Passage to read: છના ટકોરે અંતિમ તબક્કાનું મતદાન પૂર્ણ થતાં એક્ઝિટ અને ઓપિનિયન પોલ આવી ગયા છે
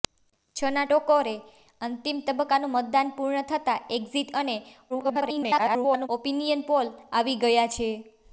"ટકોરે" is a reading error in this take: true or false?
false